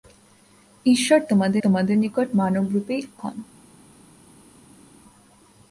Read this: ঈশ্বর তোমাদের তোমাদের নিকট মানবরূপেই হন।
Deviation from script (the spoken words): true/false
false